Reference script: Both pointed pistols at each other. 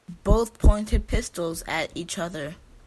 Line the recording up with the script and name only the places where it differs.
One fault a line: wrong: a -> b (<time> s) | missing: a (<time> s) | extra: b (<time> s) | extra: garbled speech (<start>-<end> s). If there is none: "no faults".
no faults